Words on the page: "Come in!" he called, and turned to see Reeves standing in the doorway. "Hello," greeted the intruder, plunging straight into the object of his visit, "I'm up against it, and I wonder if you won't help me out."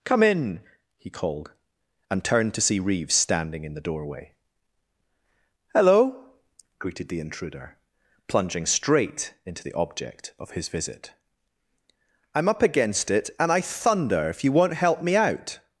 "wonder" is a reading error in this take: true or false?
true